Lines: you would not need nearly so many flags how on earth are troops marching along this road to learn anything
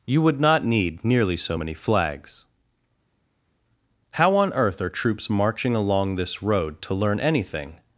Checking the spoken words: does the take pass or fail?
pass